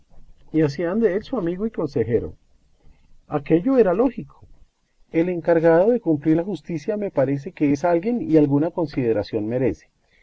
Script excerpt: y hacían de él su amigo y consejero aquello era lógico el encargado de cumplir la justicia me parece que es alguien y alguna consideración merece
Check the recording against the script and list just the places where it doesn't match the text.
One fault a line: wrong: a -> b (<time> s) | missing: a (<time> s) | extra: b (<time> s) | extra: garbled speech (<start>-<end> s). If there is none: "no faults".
no faults